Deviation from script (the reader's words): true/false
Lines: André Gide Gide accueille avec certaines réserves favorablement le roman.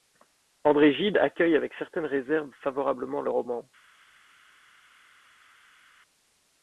true